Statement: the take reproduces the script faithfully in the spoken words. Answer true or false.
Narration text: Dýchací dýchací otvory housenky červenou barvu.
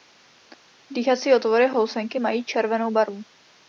false